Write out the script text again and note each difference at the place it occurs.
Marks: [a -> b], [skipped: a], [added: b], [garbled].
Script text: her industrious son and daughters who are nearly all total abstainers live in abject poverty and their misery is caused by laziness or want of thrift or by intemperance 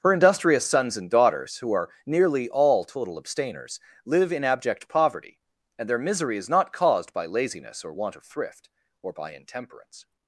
her industrious [son -> sons] and daughters who are nearly all total abstainers live in abject poverty and their misery is [added: not] caused by laziness or want of thrift or by intemperance